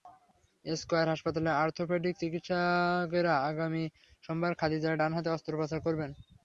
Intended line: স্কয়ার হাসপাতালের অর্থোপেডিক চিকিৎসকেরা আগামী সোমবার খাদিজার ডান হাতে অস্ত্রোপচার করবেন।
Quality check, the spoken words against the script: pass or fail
pass